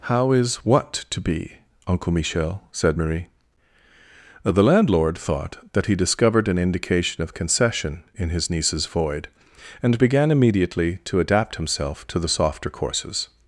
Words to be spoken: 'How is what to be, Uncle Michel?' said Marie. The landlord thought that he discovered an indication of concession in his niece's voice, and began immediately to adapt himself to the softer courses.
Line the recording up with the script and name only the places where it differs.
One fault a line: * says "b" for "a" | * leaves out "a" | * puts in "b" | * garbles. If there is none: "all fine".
* says "void" for "voice"